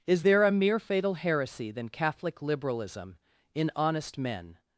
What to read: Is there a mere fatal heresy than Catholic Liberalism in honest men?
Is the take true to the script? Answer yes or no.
yes